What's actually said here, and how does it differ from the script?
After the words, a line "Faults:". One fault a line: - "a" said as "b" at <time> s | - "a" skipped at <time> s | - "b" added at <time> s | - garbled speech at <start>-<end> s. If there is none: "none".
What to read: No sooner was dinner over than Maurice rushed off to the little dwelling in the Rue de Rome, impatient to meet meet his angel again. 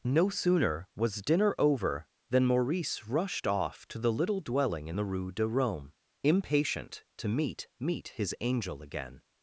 No sooner was dinner over than Maurice rushed off to the little dwelling in the Rue de Rome, impatient to meet meet his angel again.
Faults:
none